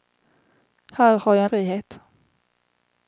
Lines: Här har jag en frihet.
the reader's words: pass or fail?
pass